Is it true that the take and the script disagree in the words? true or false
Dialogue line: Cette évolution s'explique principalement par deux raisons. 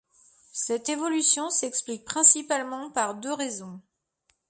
false